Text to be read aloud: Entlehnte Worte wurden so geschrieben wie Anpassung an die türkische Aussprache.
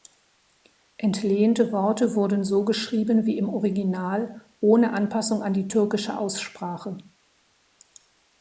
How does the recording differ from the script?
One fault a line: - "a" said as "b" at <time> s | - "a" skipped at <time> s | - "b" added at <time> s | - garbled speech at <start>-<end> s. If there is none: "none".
- "im Original ohne" added at 3.4 s